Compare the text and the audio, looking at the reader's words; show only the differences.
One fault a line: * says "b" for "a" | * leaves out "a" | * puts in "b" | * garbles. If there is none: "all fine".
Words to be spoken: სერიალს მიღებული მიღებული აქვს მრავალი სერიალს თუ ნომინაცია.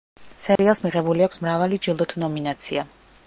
* leaves out "მიღებული"
* says "ჯილდო" for "სერიალს"